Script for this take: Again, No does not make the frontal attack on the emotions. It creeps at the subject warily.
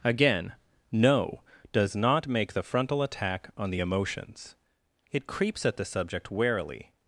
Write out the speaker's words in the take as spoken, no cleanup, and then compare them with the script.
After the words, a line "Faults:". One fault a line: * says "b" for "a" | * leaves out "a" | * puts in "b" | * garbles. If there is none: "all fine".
Again, No does not make the frontal attack on the emotions. It creeps at the subject warily.
Faults:
all fine